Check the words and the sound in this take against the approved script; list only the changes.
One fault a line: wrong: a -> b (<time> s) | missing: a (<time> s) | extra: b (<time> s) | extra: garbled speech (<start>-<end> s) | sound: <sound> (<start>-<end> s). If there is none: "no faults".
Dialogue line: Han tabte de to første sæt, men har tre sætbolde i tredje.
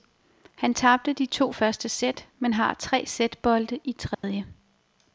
sound: dropout (4.1-4.2 s)